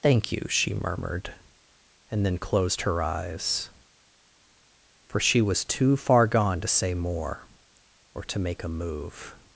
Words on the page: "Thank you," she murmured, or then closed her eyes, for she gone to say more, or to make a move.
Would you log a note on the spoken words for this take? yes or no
yes